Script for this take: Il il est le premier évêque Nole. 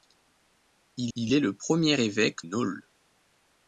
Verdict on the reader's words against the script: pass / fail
pass